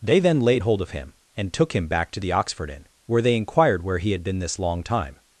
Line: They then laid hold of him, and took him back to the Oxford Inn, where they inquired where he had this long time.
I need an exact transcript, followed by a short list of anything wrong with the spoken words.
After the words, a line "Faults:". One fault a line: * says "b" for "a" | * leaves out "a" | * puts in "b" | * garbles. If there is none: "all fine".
They then laid hold of him, and took him back to the Oxford Inn, where they inquired where he had been this long time.
Faults:
* puts in "been"